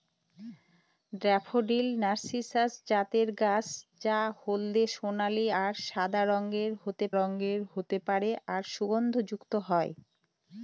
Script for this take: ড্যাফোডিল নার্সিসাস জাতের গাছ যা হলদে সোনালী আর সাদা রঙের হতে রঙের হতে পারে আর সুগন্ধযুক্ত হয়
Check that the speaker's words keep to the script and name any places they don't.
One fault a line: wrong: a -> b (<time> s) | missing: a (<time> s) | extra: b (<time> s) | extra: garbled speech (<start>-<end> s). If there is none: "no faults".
no faults